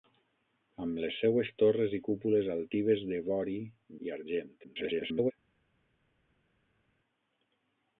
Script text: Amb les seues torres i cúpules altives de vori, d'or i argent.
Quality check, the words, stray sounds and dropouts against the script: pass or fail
fail